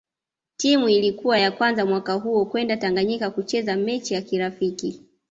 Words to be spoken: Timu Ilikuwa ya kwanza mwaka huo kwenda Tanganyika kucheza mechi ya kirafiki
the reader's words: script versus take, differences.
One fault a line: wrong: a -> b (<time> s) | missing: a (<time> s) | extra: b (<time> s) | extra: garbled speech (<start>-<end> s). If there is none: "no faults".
no faults